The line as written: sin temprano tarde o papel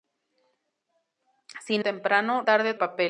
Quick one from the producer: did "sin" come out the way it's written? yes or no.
yes